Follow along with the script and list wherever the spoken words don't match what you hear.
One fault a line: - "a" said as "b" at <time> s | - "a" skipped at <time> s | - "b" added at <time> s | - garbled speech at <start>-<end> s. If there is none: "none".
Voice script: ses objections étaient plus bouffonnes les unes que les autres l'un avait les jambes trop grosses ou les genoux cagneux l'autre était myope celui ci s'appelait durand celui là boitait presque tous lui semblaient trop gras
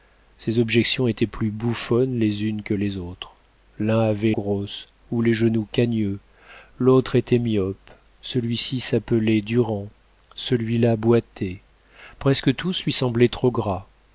- "les jambes trop" skipped at 4.3 s